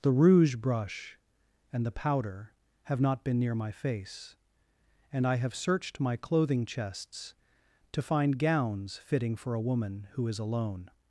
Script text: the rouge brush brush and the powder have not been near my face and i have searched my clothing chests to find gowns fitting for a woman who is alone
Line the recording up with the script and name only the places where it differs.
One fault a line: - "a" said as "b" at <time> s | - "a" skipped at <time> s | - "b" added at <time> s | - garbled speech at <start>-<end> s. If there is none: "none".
- "brush" skipped at 1.2 s